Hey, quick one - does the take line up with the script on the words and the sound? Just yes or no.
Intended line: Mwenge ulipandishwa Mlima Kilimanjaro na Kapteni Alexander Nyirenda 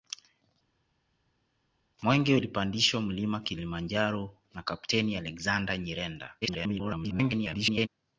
no